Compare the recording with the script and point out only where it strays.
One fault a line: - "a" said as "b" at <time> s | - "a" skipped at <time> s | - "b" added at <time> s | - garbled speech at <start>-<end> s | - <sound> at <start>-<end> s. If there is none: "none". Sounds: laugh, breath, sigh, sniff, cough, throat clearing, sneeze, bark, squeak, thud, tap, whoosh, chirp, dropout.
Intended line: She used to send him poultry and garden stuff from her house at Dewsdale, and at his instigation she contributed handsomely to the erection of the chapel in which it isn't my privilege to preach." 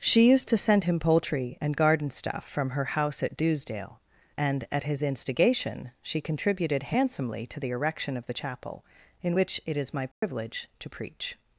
- "isn't" said as "is" at 9.8 s
- dropout at 10.1-10.2 s